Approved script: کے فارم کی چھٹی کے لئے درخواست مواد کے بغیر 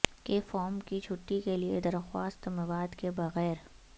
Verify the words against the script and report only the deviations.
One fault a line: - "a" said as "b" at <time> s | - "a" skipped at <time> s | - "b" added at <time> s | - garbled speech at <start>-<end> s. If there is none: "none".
none